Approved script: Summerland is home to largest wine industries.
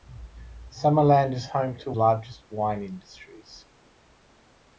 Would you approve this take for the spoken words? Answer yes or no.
yes